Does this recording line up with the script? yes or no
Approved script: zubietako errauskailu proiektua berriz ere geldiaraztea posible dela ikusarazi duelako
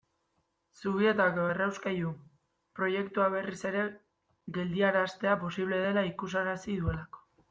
yes